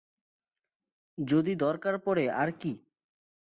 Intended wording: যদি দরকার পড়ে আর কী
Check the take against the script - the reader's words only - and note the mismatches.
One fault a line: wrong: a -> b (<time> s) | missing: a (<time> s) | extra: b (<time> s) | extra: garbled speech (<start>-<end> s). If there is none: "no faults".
no faults